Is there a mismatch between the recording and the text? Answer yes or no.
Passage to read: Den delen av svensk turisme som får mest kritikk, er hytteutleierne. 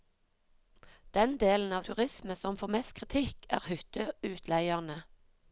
yes